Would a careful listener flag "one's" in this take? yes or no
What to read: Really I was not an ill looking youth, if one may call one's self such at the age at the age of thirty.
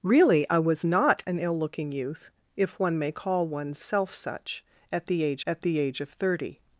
no